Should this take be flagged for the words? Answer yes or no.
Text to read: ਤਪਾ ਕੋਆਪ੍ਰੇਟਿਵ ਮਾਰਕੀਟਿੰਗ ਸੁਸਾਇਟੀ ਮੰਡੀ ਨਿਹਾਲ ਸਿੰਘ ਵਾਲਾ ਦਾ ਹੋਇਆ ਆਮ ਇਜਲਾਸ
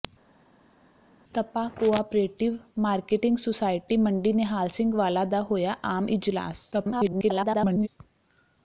yes